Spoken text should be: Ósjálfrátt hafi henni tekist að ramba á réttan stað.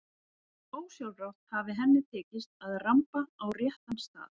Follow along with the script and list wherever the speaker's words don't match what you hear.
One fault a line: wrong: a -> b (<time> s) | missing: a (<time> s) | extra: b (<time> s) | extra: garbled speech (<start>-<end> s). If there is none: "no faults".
no faults